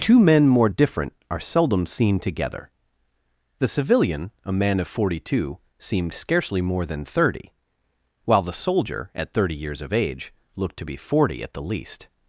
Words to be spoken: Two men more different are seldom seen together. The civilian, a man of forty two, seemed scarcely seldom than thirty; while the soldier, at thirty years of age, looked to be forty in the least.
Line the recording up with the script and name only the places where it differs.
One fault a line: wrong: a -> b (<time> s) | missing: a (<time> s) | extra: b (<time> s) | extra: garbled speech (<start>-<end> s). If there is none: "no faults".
wrong: seldom -> more (6.6 s)
wrong: in -> at (11.4 s)